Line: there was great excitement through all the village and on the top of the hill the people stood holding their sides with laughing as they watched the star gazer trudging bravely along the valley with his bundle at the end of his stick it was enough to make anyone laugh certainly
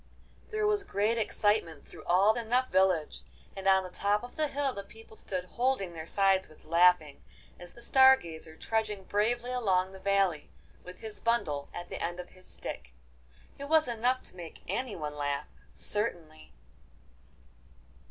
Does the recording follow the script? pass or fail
fail